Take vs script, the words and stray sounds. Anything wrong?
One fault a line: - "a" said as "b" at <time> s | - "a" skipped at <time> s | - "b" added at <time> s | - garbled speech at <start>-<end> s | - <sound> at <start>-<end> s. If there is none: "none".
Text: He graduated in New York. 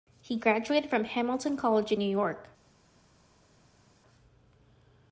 - "from Hamilton College" added at 0.9 s